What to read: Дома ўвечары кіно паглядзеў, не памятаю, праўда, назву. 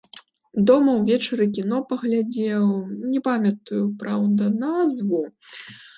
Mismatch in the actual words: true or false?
false